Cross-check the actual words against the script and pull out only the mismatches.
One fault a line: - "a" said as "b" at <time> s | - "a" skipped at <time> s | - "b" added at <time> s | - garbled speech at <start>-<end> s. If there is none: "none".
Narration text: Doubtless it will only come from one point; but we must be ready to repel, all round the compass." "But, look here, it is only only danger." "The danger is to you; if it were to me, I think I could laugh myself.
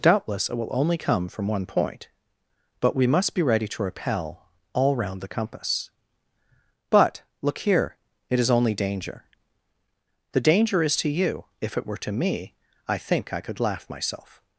- "only" skipped at 8.7 s